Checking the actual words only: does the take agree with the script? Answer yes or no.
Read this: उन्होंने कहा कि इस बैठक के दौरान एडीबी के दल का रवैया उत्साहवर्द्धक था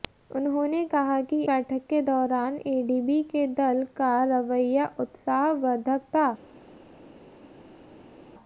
no